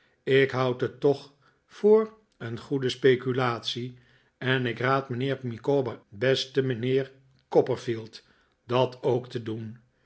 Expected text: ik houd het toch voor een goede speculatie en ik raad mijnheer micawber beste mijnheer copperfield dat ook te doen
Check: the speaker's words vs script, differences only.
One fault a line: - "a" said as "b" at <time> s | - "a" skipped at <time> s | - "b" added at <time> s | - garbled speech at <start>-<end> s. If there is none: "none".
none